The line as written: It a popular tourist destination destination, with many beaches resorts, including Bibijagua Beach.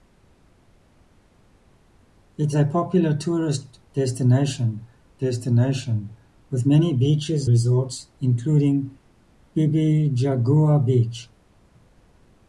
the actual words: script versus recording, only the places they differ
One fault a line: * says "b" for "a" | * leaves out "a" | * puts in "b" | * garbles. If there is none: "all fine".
all fine